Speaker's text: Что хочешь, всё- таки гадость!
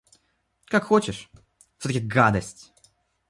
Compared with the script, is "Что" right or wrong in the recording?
wrong